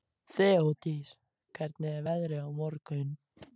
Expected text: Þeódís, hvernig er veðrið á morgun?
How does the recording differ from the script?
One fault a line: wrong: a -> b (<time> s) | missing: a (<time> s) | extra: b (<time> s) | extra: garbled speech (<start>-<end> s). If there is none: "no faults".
no faults